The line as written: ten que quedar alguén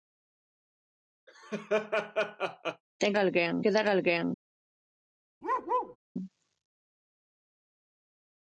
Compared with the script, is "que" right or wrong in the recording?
wrong